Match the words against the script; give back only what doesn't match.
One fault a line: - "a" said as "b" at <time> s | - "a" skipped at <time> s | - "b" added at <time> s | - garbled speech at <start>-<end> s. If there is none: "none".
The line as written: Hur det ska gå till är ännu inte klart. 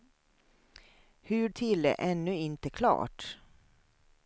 - "det ska gå" skipped at 1.5 s